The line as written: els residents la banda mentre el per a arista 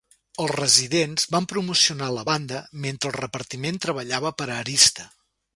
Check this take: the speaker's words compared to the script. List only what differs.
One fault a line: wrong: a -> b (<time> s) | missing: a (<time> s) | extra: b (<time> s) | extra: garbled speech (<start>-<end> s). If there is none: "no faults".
extra: van promocionar (1.4 s)
extra: repartiment treballava (3.2 s)